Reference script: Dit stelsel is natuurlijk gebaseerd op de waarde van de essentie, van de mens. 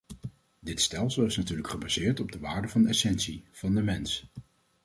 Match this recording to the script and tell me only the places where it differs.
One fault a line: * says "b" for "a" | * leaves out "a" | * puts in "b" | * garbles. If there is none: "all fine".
all fine